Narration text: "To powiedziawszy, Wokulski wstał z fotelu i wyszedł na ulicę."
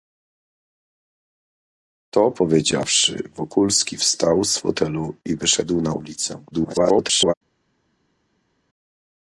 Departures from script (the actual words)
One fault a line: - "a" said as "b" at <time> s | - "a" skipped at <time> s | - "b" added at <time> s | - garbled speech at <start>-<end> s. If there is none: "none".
- garbled speech at 6.5-7.3 s